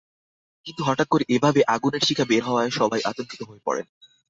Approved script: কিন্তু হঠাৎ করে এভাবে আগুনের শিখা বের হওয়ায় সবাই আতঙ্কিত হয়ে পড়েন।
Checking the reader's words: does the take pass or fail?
pass